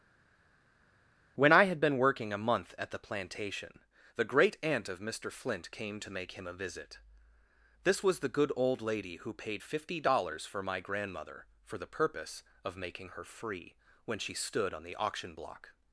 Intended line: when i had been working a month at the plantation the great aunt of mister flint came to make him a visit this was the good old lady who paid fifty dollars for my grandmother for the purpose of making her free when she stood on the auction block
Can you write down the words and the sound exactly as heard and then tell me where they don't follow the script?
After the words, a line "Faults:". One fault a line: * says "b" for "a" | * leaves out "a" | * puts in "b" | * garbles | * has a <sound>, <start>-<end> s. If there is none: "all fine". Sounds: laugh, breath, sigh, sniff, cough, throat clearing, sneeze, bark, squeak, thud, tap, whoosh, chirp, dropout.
when i had been working a month at the plantation the great aunt of mister flint came to make him a visit this was the good old lady who paid fifty dollars for my grandmother for the purpose of making her free when she stood on the auction block
Faults:
all fine